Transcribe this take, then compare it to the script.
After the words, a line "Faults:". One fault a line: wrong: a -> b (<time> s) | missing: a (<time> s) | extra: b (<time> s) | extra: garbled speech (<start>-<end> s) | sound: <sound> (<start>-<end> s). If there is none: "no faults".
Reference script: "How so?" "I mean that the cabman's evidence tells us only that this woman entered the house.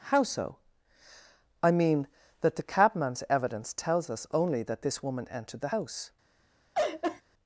"How so?" "I mean that the cabman's evidence tells us only that this woman entered the house.
Faults:
sound: laugh (6.7-7.2 s)